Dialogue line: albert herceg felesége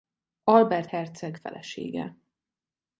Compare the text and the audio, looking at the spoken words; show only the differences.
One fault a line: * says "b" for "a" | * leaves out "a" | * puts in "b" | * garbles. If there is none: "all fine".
all fine